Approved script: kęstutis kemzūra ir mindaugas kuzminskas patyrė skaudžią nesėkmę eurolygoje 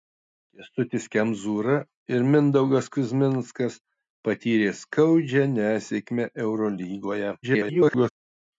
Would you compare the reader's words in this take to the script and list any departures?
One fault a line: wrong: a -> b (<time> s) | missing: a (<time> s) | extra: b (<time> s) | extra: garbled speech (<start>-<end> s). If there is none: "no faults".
extra: garbled speech (7.4-8.1 s)